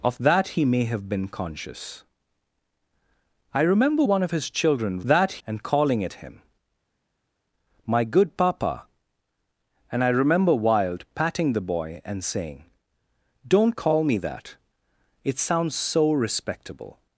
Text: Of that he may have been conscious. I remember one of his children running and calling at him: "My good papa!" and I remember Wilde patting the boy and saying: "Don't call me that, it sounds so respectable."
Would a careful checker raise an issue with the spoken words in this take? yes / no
yes